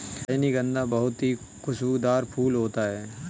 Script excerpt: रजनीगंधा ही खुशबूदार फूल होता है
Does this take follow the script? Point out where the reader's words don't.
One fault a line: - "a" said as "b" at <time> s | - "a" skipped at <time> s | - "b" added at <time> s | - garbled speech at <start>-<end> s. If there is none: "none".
- "बहुत" added at 0.9 s